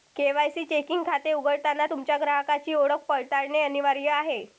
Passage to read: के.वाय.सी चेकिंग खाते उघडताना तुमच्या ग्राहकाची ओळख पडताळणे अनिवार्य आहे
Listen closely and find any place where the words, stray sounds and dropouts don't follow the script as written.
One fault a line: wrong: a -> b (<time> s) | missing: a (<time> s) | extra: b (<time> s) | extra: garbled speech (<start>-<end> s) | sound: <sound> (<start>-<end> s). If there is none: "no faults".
no faults